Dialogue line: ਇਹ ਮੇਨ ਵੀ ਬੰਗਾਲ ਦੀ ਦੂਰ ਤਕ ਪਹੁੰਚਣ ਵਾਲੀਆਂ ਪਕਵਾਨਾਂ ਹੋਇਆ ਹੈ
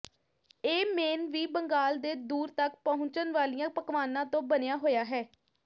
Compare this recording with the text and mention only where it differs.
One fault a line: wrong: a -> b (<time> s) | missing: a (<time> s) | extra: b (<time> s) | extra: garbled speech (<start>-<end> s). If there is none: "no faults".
wrong: ਦੀ -> ਦੇ (2.0 s)
extra: ਤੋਂ ਬਣਿਆ (4.3 s)